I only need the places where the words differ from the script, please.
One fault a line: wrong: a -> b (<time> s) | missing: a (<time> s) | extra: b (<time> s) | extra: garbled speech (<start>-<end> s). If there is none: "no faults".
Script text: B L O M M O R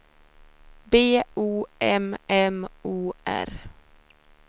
missing: L (1.2 s)